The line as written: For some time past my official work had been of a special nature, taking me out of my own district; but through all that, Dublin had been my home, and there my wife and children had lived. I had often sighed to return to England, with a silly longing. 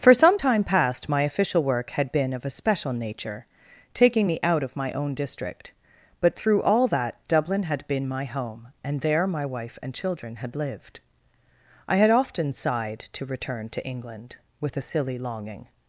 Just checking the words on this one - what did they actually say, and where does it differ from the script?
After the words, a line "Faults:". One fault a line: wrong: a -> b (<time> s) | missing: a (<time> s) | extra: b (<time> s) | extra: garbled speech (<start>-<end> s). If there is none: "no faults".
For some time past my official work had been of a special nature, taking me out of my own district; but through all that, Dublin had been my home, and there my wife and children had lived. I had often sighed to return to England, with a silly longing.
Faults:
no faults